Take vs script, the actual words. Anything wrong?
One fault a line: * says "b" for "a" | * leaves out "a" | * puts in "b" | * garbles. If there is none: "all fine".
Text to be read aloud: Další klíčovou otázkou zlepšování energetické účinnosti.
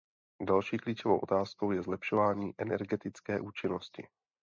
* puts in "je"